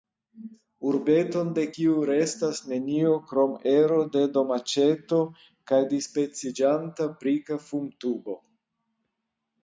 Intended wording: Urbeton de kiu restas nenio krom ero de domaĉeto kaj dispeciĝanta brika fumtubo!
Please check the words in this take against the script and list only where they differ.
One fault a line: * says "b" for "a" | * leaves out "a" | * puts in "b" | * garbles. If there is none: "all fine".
all fine